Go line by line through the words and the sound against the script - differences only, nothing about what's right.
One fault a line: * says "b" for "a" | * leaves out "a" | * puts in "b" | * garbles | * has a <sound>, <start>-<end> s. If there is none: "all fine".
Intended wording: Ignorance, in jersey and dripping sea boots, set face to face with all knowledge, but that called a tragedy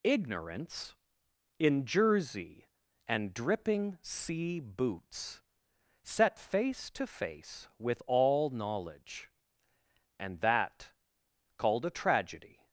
* says "and" for "but"